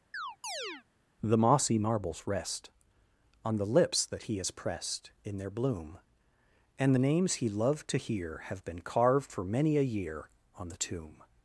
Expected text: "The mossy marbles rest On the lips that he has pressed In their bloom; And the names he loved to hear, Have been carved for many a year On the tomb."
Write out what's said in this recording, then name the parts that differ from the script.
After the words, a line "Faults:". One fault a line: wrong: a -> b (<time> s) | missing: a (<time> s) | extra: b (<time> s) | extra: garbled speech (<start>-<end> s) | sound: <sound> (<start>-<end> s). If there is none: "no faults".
"The mossy marbles rest On the lips that he has pressed In their bloom; And the names he loved to hear, Have been carved for many a year On the tomb."
Faults:
sound: chirp (0.1-0.8 s)